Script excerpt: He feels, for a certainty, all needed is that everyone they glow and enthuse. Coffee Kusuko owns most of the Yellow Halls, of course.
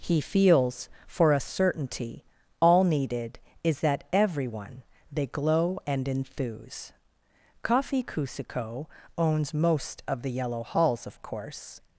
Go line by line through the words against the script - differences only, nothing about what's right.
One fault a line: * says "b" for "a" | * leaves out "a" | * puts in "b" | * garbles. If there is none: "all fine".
all fine